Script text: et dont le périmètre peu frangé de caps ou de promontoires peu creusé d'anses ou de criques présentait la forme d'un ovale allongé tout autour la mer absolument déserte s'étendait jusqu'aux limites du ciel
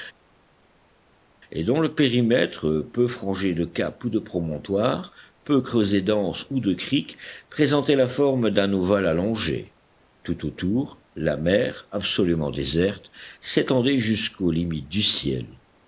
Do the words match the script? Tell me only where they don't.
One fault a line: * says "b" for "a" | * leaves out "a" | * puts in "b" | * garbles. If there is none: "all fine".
all fine